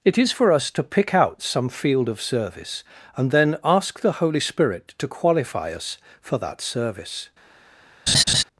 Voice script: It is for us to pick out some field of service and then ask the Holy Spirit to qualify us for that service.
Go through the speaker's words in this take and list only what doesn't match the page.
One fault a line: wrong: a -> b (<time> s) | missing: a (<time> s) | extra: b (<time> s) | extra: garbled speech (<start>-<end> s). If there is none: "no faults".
no faults